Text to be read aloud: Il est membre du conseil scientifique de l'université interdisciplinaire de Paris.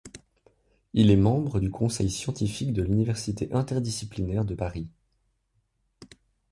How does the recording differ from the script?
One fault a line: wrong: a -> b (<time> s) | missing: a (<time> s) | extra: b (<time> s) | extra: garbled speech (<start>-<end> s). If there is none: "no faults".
no faults